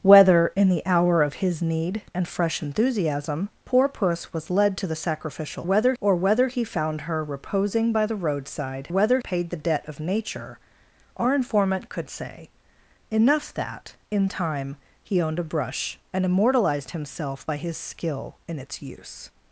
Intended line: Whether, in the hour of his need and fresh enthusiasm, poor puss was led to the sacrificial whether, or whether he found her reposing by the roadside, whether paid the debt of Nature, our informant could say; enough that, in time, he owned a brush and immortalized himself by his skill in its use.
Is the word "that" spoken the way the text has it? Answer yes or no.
yes